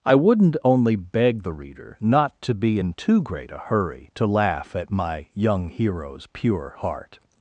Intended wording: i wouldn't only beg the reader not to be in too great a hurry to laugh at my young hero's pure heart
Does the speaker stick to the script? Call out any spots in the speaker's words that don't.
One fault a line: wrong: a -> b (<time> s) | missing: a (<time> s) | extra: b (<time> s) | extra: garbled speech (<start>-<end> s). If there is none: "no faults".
no faults